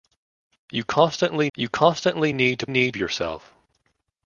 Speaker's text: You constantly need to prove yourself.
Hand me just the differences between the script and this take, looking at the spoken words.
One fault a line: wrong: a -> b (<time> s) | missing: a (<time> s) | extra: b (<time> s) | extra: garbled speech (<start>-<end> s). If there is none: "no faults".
extra: you constantly (1.6 s)
wrong: prove -> need (2.7 s)